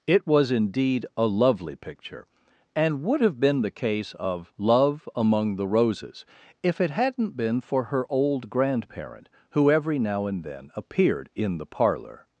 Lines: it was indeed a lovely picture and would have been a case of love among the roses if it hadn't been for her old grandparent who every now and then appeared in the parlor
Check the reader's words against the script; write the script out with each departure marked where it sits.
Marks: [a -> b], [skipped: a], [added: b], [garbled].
it was indeed a lovely picture and would have been [a -> the] case of love among the roses if it hadn't been for her old grandparent who every now and then appeared in the parlor